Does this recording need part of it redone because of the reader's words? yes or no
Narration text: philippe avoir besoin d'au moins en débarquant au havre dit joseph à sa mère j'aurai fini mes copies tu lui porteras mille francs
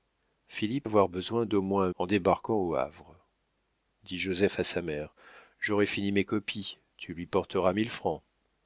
no